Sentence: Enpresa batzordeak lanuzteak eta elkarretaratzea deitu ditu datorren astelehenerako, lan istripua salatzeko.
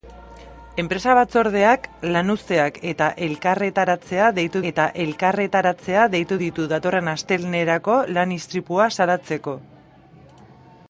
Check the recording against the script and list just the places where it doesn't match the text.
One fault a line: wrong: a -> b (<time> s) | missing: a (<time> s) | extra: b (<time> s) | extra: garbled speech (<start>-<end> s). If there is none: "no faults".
extra: eta elkarretaratzea deitu (4.7 s)